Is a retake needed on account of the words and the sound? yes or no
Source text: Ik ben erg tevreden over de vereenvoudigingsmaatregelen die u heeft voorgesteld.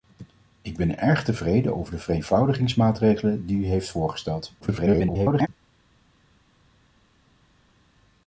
yes